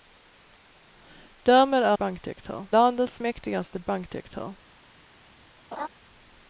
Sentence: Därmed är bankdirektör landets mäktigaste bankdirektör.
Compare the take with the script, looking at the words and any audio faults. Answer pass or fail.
fail